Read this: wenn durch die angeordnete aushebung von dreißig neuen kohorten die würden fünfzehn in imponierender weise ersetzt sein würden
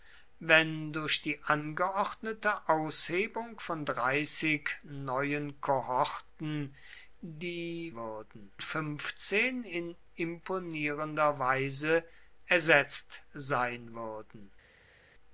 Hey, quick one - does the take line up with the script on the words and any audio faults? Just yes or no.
yes